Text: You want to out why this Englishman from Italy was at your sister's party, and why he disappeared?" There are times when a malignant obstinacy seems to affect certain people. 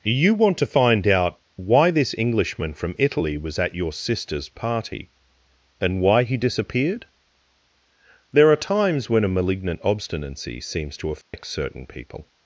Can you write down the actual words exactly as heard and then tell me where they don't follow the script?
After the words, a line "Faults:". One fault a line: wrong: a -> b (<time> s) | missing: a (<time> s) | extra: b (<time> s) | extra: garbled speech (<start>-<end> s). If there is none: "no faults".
You want to find out why this Englishman from Italy was at your sister's party, and why he disappeared?" There are times when a malignant obstinacy seems to affect certain people.
Faults:
extra: find (0.7 s)